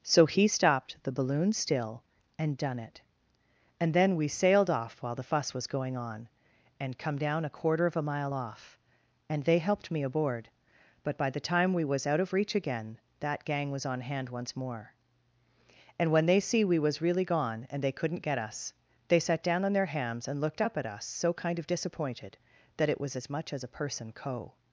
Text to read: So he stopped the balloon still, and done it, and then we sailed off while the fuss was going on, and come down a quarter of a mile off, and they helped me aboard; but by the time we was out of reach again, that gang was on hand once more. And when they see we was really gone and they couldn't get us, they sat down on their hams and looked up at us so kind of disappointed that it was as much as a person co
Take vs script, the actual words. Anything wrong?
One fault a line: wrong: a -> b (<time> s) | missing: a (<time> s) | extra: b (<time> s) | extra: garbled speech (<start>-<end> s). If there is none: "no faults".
no faults